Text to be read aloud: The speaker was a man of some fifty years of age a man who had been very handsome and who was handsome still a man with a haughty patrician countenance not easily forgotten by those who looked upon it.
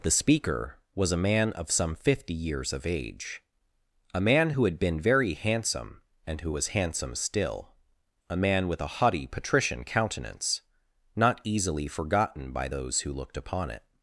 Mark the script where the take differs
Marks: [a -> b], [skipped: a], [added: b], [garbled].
The speaker was a man of some fifty years of age a man who had been very handsome and who was handsome still a man with a haughty patrician countenance not easily forgotten by those who looked upon it.